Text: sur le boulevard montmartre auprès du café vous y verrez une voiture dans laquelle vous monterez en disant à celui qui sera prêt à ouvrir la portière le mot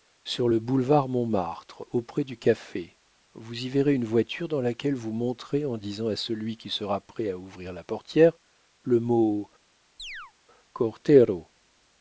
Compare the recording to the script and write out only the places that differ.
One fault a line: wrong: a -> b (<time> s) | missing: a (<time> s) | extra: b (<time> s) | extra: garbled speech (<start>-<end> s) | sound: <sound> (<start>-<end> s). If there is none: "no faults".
sound: chirp (10.0-10.3 s)